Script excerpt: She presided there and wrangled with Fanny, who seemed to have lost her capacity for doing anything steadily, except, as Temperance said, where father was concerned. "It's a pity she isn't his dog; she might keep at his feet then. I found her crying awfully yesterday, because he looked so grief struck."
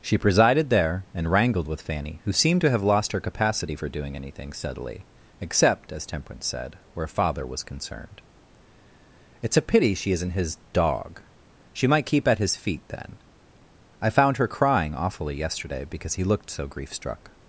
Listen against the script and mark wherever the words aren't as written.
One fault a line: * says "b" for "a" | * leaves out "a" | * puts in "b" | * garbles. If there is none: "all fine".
all fine